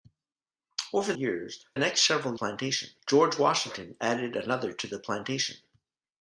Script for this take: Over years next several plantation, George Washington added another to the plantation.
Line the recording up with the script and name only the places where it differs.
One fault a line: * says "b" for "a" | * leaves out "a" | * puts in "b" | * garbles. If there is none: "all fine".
all fine